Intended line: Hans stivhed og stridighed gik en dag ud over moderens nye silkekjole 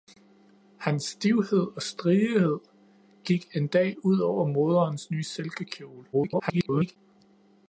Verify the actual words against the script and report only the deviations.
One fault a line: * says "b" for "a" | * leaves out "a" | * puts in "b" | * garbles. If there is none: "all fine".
* garbles